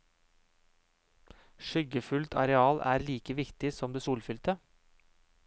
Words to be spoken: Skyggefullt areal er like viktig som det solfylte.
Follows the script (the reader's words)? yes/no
yes